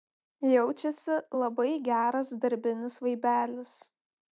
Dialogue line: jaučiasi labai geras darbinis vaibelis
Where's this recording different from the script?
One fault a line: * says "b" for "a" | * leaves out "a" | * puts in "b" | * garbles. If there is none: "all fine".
all fine